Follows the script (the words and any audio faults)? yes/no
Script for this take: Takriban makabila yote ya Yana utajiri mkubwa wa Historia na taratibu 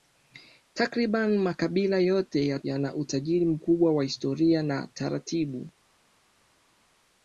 yes